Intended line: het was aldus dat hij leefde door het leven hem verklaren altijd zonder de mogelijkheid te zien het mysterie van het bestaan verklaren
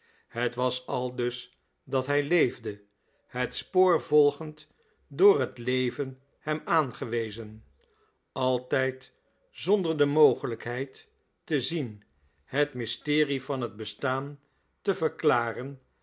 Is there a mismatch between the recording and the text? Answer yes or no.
yes